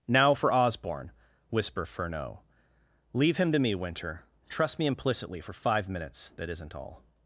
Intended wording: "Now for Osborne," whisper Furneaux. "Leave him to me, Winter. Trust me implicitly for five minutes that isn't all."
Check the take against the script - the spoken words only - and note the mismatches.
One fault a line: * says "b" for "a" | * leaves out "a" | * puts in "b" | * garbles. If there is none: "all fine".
all fine